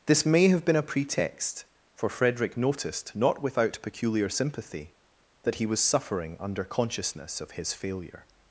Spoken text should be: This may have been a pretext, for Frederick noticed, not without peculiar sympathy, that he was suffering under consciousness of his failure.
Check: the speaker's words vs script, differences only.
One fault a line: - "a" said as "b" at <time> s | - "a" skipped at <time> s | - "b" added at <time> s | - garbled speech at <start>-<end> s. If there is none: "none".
none